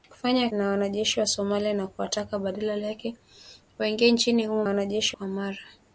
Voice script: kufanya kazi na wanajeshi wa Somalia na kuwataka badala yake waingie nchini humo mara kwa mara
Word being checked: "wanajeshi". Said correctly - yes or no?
yes